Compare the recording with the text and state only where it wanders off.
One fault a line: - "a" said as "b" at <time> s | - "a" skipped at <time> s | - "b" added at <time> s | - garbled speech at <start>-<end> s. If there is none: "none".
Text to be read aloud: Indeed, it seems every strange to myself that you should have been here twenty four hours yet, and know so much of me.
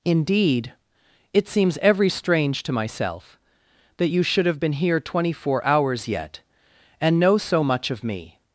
none